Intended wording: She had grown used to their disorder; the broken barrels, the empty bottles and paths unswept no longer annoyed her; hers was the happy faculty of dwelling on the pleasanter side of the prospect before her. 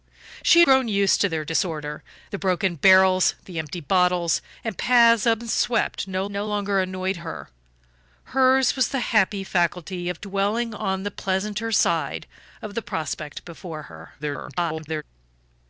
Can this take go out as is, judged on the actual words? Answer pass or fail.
fail